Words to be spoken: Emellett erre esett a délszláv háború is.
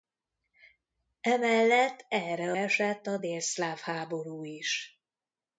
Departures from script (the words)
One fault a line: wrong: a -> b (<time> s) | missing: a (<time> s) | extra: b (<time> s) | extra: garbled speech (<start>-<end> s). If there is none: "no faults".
no faults